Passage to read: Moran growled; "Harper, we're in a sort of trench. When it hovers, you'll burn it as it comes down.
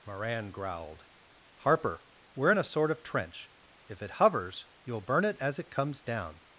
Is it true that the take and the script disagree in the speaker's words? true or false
true